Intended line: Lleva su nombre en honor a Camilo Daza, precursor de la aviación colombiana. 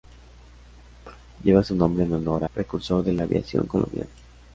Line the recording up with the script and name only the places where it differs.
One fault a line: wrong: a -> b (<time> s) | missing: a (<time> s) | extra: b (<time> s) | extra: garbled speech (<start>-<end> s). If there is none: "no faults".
missing: a Camilo Daza (2.5 s)